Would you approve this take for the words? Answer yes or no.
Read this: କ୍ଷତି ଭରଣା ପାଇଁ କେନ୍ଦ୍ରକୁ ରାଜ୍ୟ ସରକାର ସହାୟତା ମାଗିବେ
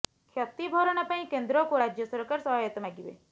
yes